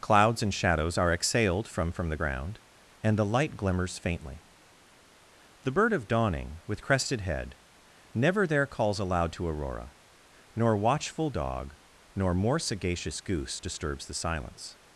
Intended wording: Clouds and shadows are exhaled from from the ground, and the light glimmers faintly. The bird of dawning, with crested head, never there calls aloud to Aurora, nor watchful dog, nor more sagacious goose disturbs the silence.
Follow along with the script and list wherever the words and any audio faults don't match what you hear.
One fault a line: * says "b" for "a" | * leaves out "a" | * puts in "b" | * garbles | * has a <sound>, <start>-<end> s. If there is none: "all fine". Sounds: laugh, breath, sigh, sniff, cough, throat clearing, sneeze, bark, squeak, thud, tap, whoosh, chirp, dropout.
all fine